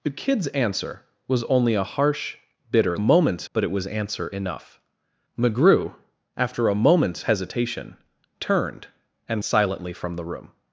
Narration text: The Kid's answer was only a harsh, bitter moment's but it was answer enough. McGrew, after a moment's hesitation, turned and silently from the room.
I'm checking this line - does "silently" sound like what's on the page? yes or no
yes